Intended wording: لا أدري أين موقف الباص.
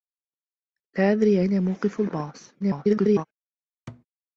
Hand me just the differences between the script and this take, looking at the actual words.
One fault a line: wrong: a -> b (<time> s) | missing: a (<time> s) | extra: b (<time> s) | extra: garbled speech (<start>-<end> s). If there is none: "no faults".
extra: garbled speech (2.6-3.3 s)